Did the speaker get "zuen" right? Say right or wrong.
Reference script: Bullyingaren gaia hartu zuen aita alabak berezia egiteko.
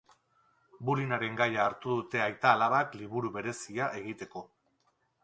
wrong